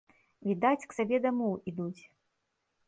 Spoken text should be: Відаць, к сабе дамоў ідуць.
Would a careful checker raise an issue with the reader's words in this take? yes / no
no